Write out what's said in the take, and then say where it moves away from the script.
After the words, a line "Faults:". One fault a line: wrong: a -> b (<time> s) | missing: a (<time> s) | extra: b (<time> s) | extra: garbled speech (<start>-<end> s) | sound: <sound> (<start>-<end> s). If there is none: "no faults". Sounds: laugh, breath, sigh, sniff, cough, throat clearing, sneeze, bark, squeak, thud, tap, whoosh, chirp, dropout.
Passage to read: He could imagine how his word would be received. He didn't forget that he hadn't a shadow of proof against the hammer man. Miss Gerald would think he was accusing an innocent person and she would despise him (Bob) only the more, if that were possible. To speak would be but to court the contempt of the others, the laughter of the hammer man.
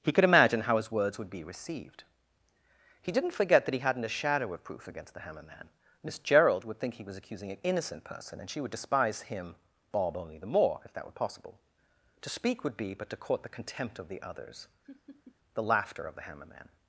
He could imagine how his words would be received. He didn't forget that he hadn't a shadow of proof against the hammer man. Miss Gerald would think he was accusing an innocent person and she would despise him (Bob) only the more, if that were possible. To speak would be but to court the contempt of the others, the laughter of the hammer man.
Faults:
wrong: word -> words (0.9 s)
sound: laugh (14.8-15.4 s)